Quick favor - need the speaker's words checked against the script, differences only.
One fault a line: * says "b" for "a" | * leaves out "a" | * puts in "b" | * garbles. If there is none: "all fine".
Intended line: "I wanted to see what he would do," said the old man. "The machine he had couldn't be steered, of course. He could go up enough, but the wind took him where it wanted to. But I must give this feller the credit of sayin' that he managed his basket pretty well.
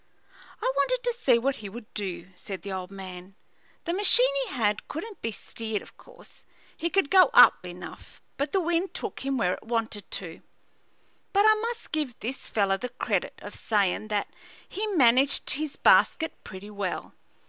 all fine